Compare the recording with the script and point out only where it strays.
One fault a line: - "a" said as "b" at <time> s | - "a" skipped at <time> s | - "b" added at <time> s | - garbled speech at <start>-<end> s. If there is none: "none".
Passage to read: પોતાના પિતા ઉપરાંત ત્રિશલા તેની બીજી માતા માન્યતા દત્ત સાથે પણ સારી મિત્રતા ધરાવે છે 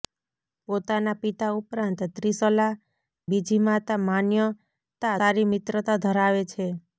- "તેની" skipped at 2.7 s
- "દત્ત સાથે પણ" skipped at 5.1 s